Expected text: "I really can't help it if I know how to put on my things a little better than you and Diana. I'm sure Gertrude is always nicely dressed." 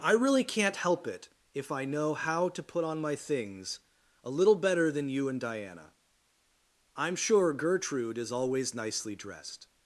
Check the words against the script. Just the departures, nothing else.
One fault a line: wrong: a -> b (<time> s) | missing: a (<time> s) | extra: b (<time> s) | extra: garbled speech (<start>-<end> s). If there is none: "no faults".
no faults